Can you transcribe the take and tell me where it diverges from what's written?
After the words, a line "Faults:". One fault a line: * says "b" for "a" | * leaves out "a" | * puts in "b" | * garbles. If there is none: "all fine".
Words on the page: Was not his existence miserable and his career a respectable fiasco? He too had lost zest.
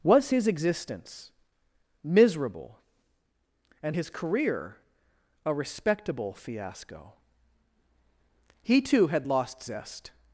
Was his existence miserable and his career a respectable fiasco? He too had lost zest.
Faults:
* leaves out "not"